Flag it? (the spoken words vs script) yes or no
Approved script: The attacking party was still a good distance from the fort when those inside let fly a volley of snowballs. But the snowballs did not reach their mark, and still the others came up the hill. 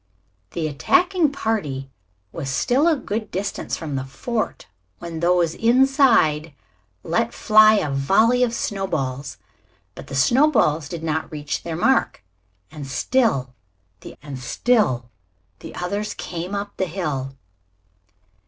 yes